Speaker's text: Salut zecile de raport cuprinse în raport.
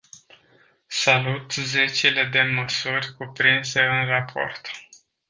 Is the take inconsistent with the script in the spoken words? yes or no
yes